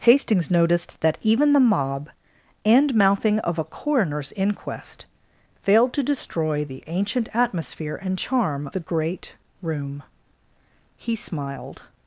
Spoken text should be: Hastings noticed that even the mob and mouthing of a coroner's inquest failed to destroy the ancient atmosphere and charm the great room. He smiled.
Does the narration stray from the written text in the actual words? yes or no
no